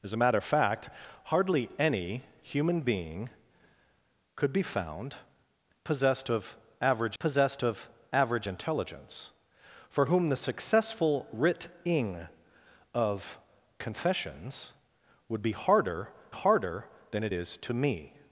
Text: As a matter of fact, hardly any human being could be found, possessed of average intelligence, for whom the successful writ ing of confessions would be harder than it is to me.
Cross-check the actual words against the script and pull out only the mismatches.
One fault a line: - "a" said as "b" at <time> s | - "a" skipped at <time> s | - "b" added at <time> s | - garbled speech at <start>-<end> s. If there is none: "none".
- "possessed of average" added at 7.2 s
- "harder" added at 16.3 s